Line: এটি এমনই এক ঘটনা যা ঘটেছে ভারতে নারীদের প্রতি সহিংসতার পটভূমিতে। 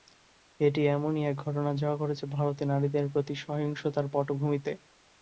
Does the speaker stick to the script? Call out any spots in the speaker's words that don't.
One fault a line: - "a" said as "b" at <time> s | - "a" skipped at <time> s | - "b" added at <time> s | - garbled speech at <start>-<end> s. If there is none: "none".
none